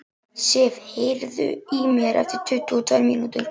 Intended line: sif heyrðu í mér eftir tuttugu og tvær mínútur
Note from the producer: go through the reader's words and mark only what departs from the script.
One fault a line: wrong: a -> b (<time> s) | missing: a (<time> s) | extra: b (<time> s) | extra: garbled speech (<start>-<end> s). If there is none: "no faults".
no faults